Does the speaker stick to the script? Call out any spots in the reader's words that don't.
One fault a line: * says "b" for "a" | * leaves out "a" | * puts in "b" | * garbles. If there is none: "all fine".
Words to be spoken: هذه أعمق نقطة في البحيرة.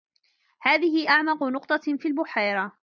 all fine